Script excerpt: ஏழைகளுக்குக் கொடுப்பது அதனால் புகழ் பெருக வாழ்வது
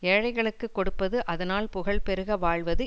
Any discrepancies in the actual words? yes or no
no